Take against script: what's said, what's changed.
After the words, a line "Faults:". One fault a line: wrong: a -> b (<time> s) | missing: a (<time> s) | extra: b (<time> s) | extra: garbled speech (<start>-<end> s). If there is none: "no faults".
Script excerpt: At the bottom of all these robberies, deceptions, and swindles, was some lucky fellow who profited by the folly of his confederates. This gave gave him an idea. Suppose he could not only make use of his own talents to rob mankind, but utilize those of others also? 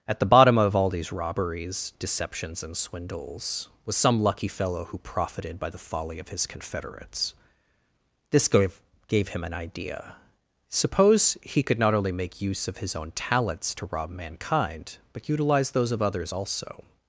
At the bottom of all these robberies, deceptions, and swindles, was some lucky fellow who profited by the folly of his confederates. This gave gave him an idea. Suppose he could not only make use of his own talents to rob mankind, but utilize those of others also?
Faults:
no faults